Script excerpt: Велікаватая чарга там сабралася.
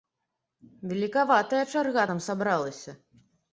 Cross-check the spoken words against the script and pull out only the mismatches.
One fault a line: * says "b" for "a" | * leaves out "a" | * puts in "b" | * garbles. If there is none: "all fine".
all fine